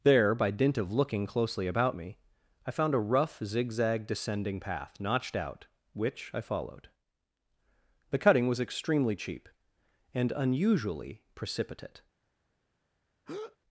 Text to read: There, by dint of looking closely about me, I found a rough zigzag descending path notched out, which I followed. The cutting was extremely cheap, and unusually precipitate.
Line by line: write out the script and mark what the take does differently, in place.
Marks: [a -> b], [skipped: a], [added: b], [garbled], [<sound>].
There, by dint of looking closely about me, I found a rough zigzag descending path notched out, which I followed. The cutting was extremely cheap, and unusually precipitate. [breath]